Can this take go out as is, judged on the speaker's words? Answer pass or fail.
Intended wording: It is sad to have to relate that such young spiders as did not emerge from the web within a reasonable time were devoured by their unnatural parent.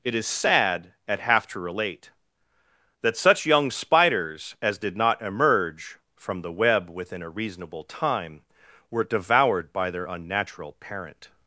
fail